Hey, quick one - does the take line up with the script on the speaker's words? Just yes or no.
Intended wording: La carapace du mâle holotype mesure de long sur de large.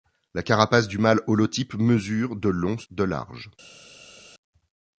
no